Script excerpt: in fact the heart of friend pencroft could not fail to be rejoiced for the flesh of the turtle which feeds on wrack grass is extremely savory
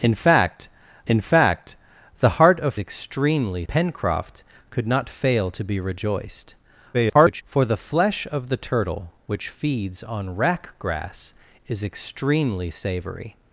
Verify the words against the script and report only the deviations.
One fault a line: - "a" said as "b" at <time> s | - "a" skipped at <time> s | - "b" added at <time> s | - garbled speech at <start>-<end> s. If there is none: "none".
- "in fact" added at 1.1 s
- "friend" said as "extremely" at 2.8 s
- garbled speech at 6.9-7.4 s